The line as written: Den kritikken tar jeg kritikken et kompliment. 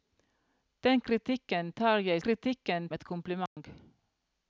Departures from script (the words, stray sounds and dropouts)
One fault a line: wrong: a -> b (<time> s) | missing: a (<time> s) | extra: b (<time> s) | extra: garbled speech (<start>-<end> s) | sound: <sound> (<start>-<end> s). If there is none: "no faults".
sound: dropout (3.5-3.6 s)